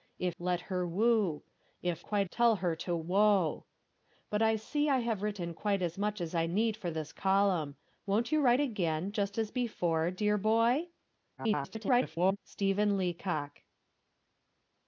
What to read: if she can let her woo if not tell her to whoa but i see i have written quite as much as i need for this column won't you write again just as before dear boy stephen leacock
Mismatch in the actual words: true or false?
true